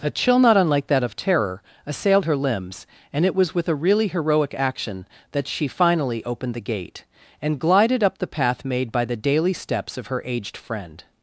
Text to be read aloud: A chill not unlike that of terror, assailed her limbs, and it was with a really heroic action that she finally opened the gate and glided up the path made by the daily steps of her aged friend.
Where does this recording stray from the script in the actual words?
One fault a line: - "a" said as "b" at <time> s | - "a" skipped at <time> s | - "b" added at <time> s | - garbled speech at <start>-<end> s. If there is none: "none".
none